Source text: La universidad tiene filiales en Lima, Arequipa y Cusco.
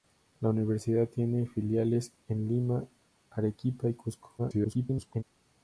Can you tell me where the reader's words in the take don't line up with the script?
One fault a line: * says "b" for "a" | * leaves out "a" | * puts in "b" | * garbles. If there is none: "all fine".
* garbles